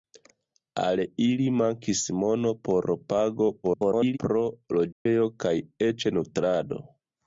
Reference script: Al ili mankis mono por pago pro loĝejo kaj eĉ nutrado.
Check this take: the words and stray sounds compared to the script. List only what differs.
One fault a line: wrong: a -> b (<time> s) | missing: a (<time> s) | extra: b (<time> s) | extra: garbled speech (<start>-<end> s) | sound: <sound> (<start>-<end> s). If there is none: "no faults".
extra: garbled speech (3.6-4.2 s)
sound: dropout (4.9-5.1 s)